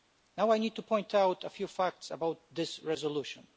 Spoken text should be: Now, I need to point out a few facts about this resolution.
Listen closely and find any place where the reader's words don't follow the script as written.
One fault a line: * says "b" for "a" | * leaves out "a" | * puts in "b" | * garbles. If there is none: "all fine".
all fine